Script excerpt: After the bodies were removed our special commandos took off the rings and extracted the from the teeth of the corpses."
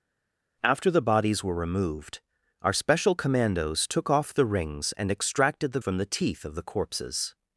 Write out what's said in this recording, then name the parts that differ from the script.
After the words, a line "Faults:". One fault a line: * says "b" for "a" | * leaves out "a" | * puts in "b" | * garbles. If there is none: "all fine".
After the bodies were removed our special commandos took off the rings and extracted the from the teeth of the corpses."
Faults:
all fine